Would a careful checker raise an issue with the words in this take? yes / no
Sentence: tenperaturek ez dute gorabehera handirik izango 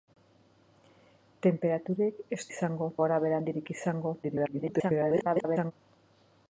yes